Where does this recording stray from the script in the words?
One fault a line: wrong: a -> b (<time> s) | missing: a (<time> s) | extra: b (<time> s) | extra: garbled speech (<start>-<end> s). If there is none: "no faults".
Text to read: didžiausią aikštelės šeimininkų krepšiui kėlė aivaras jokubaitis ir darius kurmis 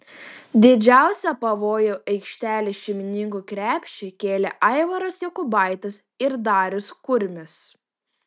extra: pavojų (1.4 s)